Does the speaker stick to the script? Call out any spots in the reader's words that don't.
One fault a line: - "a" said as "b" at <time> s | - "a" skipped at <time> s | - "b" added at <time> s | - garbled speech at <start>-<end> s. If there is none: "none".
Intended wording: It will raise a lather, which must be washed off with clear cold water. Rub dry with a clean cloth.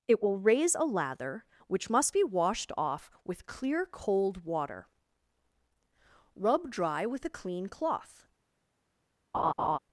none